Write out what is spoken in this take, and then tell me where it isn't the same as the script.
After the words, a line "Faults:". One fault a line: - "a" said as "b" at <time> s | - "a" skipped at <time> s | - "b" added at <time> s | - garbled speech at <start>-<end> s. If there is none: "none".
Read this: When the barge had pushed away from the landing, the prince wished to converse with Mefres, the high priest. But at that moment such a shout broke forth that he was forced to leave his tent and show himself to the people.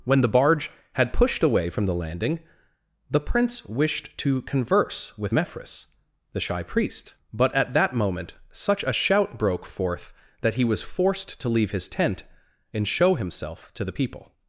When the barge had pushed away from the landing, the prince wished to converse with Mefres, the shy priest. But at that moment such a shout broke forth that he was forced to leave his tent and show himself to the people.
Faults:
- "high" said as "shy" at 6.4 s